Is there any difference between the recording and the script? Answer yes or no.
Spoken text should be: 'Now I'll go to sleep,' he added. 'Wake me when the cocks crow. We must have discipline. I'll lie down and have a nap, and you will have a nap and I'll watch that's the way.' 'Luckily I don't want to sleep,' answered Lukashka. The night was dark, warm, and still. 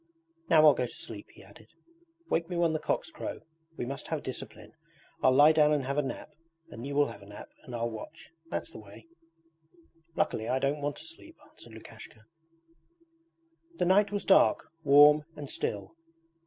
no